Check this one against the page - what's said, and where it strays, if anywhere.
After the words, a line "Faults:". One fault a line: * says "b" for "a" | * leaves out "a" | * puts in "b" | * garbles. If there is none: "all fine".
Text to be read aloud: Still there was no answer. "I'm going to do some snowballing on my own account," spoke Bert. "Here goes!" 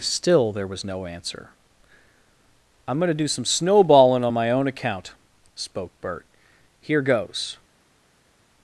Still there was no answer. "I'm going to do some snowballing on my own account," spoke Bert. "Here goes!"
Faults:
all fine